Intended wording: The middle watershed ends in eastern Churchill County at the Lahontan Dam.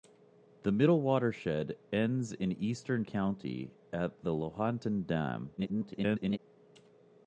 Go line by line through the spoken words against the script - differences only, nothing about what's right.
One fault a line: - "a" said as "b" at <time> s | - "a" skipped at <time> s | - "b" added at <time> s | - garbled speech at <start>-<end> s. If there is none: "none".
- "Churchill" skipped at 3.0 s
- garbled speech at 5.6-6.4 s